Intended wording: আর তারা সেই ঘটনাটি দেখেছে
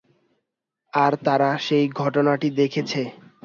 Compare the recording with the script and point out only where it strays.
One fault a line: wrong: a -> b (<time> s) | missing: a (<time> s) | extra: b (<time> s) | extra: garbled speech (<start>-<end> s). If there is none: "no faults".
no faults